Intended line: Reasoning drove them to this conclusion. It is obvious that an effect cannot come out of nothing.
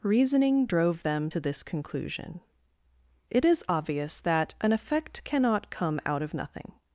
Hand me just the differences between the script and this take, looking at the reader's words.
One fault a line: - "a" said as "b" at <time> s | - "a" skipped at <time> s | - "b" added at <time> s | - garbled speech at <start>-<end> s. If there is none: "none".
none